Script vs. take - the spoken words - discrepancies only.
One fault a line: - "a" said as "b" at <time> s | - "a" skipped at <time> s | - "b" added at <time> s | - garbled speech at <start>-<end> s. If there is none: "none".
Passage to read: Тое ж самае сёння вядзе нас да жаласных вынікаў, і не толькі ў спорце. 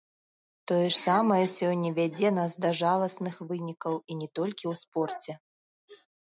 none